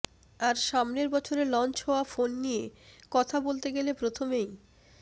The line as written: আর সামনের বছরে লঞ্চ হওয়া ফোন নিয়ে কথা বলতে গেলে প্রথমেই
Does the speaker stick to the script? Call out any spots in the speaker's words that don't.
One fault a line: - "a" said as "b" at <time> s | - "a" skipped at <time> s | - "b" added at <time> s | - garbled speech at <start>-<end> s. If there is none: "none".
none